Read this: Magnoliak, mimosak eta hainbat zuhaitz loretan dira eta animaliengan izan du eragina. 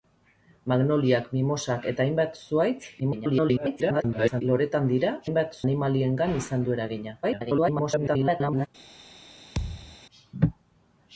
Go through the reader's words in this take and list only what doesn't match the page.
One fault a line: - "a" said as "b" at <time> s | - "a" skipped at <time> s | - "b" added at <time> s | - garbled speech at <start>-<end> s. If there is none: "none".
- garbled speech at 3.0-4.4 s
- "eta" said as "hainbat" at 5.3 s
- garbled speech at 7.2-8.7 s